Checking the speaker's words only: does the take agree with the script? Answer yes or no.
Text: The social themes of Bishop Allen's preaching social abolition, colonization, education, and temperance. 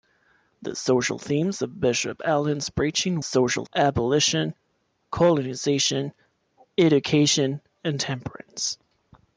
yes